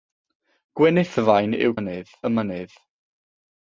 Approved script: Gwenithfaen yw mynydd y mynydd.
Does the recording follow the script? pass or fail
pass